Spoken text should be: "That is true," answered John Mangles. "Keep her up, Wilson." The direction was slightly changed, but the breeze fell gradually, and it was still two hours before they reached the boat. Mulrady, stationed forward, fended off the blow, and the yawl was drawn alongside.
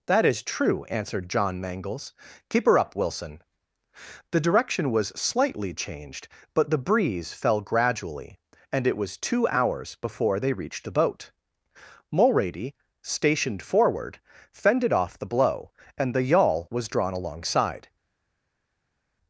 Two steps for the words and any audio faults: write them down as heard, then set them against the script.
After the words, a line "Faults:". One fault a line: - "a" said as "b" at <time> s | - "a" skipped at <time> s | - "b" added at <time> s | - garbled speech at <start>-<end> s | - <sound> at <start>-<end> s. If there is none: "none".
"That is true," answered John Mangles. "Keep her up, Wilson." The direction was slightly changed, but the breeze fell gradually, and it was two hours before they reached the boat. Mulrady, stationed forward, fended off the blow, and the yawl was drawn alongside.
Faults:
- "still" skipped at 9.2 s